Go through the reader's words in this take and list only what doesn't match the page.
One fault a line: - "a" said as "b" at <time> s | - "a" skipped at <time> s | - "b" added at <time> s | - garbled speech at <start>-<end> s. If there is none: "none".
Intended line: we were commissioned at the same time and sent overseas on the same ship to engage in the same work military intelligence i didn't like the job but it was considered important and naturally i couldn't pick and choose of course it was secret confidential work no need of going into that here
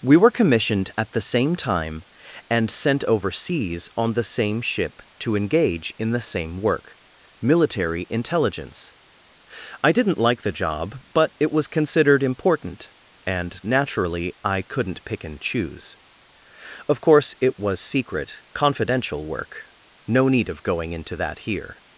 none